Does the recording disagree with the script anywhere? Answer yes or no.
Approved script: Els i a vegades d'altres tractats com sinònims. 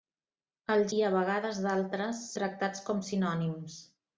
no